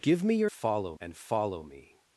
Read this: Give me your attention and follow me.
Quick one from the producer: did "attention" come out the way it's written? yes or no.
no